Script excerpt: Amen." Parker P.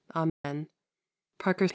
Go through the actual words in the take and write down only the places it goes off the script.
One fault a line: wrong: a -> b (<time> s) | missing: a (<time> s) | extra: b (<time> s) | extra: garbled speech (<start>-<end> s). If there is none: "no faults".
no faults